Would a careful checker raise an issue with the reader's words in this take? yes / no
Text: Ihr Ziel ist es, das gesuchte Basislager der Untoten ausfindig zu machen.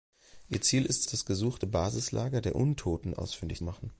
yes